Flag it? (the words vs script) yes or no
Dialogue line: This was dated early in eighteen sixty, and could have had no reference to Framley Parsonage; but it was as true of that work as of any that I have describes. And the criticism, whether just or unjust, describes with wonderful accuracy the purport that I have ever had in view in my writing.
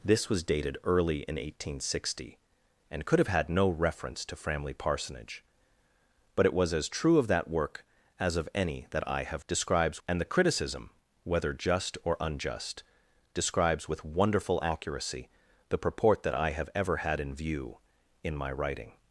no